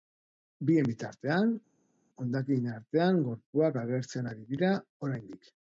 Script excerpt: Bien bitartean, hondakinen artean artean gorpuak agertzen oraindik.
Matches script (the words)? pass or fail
fail